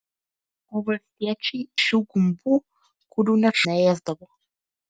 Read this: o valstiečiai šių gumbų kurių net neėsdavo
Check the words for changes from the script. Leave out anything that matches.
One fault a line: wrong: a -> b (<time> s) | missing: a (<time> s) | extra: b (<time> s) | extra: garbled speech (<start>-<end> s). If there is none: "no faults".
no faults